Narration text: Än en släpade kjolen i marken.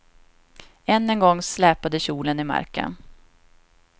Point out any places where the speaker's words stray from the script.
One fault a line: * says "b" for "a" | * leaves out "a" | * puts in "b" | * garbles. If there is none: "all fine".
* puts in "gång"